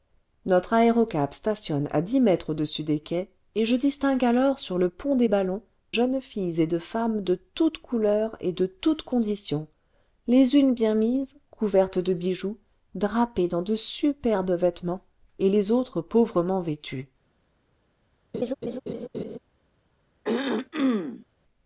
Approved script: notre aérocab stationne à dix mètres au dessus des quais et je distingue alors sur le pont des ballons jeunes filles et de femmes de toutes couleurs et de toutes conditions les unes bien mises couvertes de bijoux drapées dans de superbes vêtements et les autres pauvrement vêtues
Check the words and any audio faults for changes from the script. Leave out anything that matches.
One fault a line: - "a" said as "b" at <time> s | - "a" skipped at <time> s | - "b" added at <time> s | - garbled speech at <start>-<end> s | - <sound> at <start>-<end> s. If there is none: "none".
- laugh at 18.3-19.4 s
- throat clearing at 20.2-21.3 s